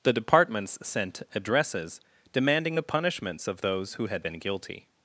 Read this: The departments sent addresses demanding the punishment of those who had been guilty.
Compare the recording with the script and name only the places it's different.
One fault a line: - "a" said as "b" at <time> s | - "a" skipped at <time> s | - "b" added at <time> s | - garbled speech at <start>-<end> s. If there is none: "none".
- "punishment" said as "punishments" at 2.8 s